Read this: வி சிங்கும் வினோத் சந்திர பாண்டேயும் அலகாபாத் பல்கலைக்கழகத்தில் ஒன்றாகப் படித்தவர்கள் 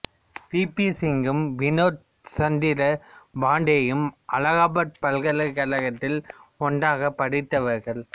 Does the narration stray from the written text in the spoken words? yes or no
yes